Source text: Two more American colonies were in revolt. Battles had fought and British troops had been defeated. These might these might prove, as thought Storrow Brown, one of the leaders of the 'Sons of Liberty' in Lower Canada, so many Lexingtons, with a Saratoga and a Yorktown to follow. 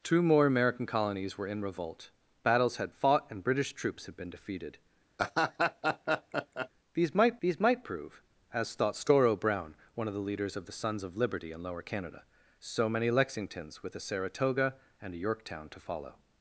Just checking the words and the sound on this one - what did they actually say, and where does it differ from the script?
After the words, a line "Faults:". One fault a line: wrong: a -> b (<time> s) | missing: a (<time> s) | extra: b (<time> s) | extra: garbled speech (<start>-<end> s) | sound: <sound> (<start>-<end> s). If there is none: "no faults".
Two more American colonies were in revolt. Battles had fought and British troops had been defeated. These might these might prove, as thought Storrow Brown, one of the leaders of the 'Sons of Liberty' in Lower Canada, so many Lexingtons, with a Saratoga and a Yorktown to follow.
Faults:
sound: laugh (5.2-6.7 s)